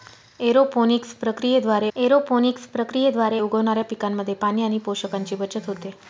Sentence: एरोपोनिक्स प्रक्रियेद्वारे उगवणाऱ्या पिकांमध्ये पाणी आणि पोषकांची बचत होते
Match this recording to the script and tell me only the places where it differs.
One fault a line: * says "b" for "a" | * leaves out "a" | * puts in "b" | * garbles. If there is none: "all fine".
* puts in "एरोपोनिक्स प्रक्रियेद्वारे"